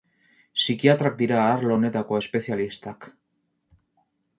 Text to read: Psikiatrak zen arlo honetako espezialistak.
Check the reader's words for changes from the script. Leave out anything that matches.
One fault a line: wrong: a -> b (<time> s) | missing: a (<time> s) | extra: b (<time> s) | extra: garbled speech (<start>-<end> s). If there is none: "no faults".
wrong: zen -> dira (1.2 s)